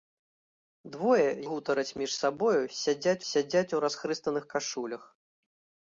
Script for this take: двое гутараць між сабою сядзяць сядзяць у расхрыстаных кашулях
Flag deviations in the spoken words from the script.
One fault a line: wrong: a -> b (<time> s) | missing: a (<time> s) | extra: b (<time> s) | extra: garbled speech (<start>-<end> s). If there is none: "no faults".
no faults